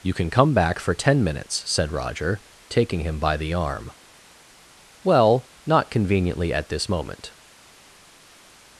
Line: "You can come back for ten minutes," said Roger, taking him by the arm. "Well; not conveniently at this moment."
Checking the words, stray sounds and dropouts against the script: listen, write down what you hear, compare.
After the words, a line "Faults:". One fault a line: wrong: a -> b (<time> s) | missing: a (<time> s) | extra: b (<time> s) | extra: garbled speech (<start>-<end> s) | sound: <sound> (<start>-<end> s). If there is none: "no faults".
"You can come back for ten minutes," said Roger, taking him by the arm. "Well; not conveniently at this moment."
Faults:
no faults